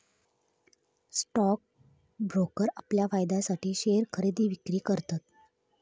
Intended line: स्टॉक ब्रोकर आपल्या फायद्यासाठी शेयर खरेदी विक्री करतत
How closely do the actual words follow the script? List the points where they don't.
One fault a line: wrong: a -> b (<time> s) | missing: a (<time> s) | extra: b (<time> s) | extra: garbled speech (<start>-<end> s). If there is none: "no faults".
no faults